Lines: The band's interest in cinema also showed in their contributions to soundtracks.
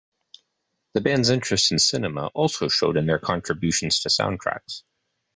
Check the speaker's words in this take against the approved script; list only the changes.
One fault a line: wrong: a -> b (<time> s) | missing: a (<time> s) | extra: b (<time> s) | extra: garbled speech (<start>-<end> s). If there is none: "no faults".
no faults